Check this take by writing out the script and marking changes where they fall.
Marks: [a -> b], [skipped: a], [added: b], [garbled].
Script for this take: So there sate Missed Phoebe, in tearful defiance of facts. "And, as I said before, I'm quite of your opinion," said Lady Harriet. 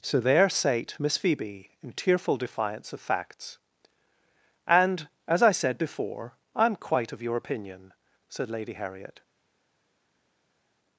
So there sate [Missed -> Miss] Phoebe, in tearful defiance of facts. "And, as I said before, I'm quite of your opinion," said Lady Harriet.